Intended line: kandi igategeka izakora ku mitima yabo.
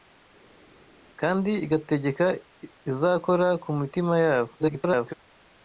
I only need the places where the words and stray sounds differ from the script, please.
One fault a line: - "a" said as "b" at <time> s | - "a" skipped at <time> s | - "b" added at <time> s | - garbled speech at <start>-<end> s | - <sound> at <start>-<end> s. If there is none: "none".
- garbled speech at 4.6-5.1 s